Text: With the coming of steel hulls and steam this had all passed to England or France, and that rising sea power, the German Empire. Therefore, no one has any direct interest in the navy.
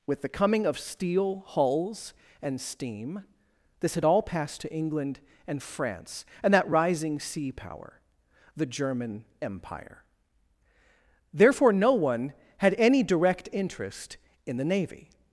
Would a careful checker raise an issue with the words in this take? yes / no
yes